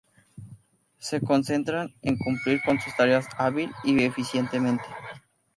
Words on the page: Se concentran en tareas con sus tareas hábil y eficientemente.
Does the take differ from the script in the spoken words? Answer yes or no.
yes